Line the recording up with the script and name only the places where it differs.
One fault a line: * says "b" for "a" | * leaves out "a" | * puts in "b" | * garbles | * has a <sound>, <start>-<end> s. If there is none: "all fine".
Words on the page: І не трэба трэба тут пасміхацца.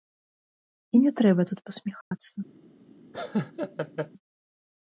* leaves out "трэба"
* has a dropout, 2.0-2.1 s
* has a laugh, 3.1-4.1 s